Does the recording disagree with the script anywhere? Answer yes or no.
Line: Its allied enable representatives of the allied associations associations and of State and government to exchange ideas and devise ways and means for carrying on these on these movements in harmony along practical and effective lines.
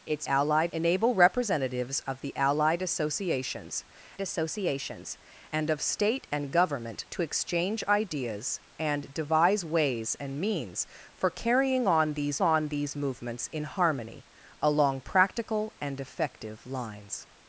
no